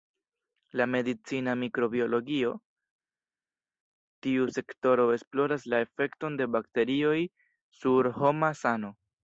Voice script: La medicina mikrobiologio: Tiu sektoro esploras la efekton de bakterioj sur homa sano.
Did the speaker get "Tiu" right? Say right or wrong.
right